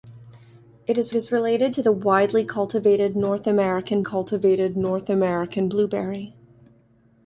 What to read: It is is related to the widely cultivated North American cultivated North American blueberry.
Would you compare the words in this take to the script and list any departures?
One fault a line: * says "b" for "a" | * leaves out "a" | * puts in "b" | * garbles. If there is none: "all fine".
all fine